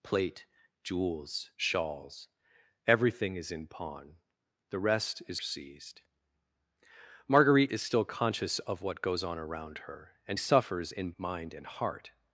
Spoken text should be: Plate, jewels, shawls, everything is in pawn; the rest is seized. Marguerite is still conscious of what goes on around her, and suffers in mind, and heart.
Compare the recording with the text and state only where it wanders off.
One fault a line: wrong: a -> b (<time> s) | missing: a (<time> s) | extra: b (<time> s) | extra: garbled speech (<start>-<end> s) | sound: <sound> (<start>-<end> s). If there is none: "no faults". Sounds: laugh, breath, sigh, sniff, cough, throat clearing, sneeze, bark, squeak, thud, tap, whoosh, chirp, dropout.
no faults